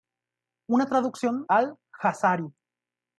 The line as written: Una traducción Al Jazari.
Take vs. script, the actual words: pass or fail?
pass